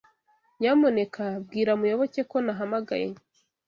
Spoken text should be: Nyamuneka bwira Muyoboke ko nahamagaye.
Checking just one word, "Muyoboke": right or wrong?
right